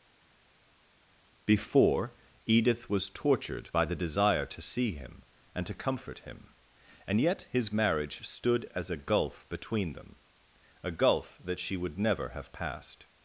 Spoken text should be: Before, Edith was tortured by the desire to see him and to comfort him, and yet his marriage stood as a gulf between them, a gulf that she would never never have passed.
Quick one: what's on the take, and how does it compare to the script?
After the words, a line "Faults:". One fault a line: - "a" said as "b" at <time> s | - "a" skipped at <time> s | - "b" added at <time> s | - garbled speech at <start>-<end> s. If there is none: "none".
Before, Edith was tortured by the desire to see him and to comfort him, and yet his marriage stood as a gulf between them, a gulf that she would never have passed.
Faults:
- "never" skipped at 12.3 s